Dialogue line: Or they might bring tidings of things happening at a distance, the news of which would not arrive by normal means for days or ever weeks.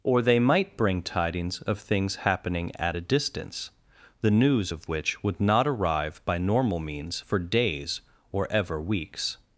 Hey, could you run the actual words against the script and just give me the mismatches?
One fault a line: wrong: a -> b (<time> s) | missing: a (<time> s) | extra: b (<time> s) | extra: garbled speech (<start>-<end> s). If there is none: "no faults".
no faults